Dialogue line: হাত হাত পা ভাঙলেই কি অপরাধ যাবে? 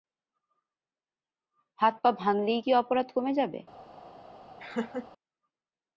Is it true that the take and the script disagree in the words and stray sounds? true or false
true